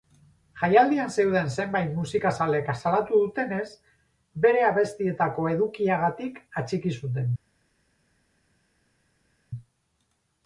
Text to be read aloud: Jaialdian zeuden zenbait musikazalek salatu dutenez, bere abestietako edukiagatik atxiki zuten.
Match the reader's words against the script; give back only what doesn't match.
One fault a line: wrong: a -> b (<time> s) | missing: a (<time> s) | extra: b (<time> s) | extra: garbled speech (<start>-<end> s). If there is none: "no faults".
no faults